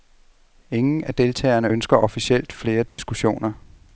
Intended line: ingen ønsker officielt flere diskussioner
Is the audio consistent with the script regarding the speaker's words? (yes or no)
no